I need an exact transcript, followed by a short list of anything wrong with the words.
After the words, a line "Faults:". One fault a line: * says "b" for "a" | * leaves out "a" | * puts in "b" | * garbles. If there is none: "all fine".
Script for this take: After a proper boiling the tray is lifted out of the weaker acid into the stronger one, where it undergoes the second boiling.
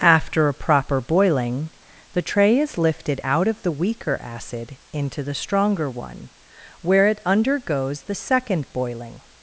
After a proper boiling the tray is lifted out of the weaker acid into the stronger one, where it undergoes the second boiling.
Faults:
all fine